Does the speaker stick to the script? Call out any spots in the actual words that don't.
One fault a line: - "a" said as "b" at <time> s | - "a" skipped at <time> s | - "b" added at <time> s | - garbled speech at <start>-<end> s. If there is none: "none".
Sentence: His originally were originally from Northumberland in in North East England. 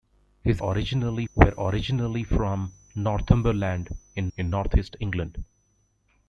none